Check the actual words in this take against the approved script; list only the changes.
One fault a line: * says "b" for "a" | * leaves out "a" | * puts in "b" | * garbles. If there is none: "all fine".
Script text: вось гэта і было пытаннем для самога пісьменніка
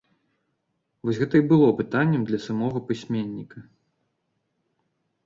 all fine